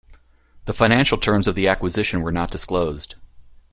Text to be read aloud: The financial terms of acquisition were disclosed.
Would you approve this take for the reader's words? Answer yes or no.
no